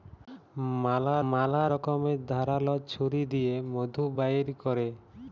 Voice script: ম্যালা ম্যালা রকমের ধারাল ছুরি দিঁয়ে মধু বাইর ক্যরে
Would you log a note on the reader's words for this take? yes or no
no